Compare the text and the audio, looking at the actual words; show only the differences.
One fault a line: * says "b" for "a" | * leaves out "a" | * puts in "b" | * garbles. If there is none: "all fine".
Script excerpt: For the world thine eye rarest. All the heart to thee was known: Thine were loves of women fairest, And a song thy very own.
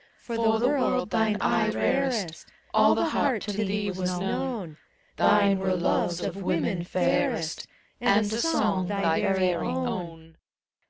all fine